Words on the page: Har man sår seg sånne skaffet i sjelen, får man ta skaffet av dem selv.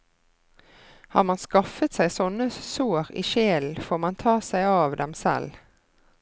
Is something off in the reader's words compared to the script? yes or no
yes